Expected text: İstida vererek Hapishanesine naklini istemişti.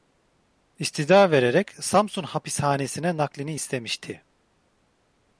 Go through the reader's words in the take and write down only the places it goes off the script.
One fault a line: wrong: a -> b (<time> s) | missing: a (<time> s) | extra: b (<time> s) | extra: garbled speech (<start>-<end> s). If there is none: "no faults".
extra: Samsun (1.7 s)